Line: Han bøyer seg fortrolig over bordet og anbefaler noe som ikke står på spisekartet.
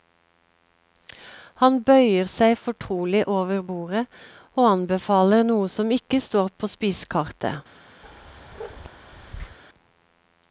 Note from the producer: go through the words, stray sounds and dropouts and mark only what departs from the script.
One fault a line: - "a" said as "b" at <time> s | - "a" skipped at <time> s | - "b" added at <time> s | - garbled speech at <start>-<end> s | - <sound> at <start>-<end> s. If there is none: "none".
- bark at 8.0-9.6 s